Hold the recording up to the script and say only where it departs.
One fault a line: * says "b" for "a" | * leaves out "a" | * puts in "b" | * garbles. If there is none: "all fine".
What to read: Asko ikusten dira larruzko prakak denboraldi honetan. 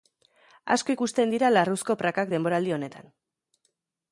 all fine